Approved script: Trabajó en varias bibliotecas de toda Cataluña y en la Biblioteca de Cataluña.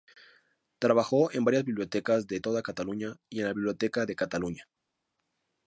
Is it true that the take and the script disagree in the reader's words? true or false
false